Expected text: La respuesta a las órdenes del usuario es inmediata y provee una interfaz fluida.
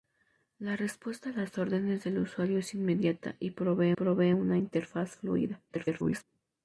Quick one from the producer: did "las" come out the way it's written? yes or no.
yes